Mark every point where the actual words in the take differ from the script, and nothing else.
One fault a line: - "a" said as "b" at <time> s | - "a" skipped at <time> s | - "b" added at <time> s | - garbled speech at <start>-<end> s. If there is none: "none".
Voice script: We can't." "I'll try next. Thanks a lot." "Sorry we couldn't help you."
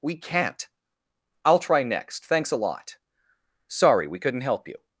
none